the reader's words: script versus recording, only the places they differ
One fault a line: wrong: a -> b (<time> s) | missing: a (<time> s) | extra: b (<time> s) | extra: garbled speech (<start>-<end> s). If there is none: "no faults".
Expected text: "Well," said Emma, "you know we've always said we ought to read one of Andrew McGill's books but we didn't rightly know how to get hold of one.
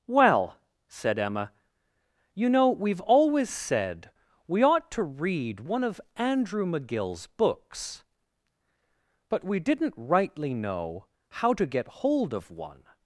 no faults